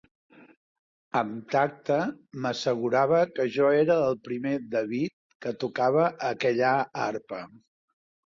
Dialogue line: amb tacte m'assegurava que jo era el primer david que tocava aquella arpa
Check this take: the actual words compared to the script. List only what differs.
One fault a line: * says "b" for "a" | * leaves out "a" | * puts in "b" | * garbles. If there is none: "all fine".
all fine